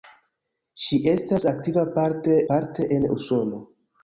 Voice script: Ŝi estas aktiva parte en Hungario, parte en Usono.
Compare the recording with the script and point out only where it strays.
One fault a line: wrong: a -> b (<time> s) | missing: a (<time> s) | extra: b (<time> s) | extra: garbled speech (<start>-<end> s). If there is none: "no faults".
missing: en Hungario (2.4 s)